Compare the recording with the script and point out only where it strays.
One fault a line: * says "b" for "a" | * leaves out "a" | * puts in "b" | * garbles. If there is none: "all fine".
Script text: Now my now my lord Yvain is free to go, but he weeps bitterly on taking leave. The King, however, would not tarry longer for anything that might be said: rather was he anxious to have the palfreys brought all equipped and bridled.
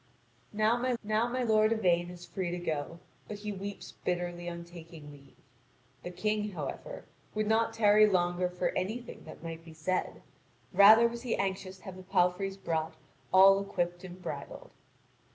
all fine